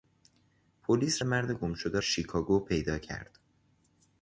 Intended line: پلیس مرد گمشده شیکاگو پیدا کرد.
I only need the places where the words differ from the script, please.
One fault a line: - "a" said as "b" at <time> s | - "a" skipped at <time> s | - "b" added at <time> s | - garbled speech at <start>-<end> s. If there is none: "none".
none